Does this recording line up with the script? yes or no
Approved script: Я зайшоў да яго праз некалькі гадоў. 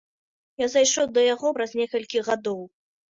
yes